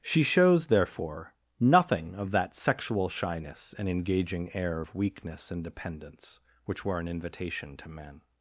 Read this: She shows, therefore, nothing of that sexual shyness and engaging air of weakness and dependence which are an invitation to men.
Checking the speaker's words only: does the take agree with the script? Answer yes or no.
no